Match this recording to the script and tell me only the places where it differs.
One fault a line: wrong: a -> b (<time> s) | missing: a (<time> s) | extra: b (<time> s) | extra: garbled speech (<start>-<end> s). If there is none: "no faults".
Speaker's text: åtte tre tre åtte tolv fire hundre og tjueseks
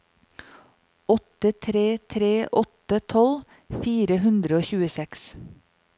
no faults